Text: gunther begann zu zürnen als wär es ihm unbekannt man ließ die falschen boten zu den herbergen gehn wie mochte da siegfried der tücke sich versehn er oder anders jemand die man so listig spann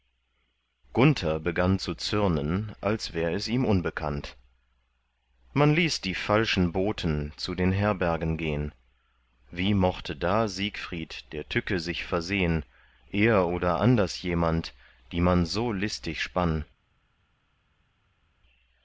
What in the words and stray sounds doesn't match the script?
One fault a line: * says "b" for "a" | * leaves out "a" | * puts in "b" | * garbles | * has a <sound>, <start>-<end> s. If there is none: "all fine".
all fine